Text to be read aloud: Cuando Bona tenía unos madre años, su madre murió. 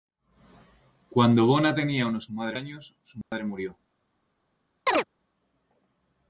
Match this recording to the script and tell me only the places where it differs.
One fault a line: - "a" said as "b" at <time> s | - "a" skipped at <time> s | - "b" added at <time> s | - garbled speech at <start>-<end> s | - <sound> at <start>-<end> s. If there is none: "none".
- dropout at 3.2-3.3 s
- chirp at 4.9-5.0 s